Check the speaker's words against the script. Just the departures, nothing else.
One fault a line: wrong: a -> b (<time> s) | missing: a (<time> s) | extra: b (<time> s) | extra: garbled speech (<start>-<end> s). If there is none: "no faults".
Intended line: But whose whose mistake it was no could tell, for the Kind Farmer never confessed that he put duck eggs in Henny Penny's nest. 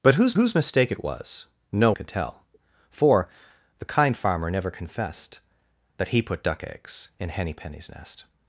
no faults